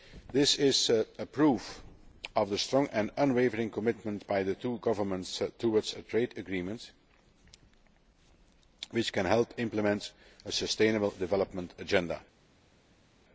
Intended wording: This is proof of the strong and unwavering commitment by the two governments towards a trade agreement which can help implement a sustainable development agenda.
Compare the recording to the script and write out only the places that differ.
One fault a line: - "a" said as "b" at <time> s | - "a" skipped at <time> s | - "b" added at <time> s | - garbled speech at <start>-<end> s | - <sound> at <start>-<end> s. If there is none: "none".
none